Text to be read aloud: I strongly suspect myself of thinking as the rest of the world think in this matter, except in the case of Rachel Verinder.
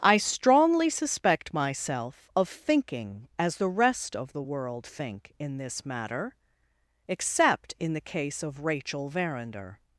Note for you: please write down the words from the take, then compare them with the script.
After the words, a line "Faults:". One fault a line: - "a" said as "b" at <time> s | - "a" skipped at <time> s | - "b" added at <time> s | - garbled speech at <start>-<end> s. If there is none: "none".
I strongly suspect myself of thinking as the rest of the world think in this matter, except in the case of Rachel Verinder.
Faults:
none